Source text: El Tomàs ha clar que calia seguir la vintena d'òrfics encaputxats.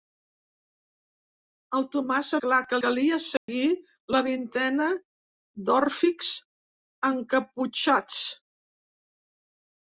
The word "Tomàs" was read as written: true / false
true